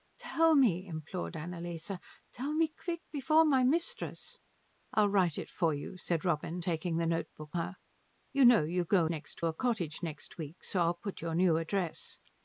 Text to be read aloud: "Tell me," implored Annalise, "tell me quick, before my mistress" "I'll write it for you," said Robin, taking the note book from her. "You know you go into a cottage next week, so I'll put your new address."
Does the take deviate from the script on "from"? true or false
true